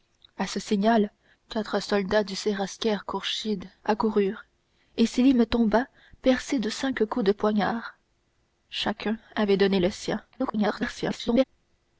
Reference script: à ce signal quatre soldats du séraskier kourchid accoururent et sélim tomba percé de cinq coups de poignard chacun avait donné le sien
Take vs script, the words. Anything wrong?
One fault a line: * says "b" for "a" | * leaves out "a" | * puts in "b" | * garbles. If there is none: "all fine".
* garbles